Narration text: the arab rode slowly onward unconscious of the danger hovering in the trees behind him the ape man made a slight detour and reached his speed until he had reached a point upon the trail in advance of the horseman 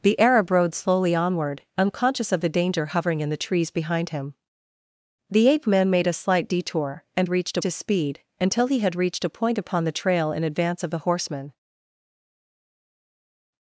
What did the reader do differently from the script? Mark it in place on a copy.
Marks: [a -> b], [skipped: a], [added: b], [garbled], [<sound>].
the arab rode slowly onward unconscious of the danger hovering in the trees behind him the ape man made a slight detour and reached his speed until he had reached a point upon the trail in advance of the horseman